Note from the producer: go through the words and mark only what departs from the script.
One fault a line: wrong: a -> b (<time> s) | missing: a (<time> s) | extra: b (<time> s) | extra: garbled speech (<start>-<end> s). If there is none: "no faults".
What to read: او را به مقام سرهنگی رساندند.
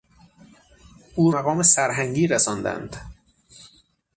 missing: را به (1.3 s)